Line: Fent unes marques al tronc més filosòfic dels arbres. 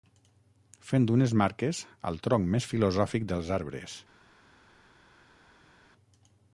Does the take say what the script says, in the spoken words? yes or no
yes